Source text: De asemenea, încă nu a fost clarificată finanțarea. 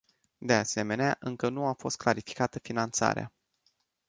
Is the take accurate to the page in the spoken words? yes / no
yes